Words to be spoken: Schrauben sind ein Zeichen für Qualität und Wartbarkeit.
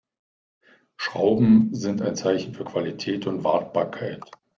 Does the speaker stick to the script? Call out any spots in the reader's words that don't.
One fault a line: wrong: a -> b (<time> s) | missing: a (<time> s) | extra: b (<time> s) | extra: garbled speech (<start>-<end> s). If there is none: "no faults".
no faults